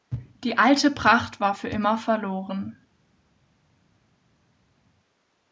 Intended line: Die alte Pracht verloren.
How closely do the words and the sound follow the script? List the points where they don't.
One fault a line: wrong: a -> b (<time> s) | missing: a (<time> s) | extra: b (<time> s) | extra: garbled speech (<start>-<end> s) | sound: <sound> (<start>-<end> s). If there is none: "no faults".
extra: war für immer (1.4 s)